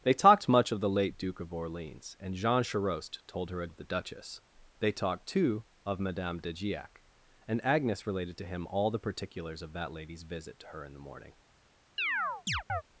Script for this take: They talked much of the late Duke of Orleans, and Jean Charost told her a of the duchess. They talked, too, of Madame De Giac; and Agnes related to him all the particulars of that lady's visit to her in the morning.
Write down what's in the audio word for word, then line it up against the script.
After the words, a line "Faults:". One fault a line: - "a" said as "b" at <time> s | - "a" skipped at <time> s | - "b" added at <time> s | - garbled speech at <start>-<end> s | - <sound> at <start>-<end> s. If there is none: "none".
They talked much of the late Duke of Orleans, and Jean Charost told her a of the duchess. They talked, too, of Madame De Giac; and Agnes related to him all the particulars of that lady's visit to her in the morning.
Faults:
- chirp at 12.0-12.8 s